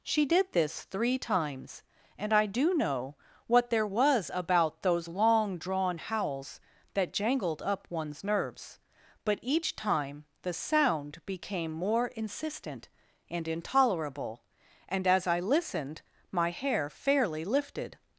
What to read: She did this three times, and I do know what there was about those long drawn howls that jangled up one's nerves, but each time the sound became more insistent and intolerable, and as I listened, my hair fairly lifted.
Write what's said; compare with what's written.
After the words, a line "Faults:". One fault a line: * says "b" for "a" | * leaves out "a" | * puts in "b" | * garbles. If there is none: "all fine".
She did this three times, and I do know what there was about those long drawn howls that jangled up one's nerves, but each time the sound became more insistent and intolerable, and as I listened, my hair fairly lifted.
Faults:
all fine